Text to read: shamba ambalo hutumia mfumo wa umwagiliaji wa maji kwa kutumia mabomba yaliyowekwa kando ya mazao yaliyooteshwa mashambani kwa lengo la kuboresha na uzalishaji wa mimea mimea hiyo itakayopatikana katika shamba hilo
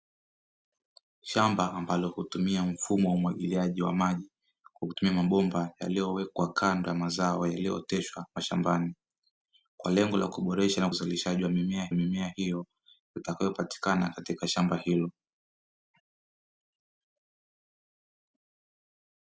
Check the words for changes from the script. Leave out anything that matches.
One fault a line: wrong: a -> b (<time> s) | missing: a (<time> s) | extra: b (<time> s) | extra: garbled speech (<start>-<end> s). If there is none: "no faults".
no faults